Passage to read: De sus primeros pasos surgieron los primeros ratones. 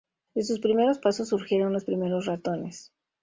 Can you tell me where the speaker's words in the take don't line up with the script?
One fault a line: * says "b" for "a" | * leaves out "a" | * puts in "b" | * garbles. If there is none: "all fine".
all fine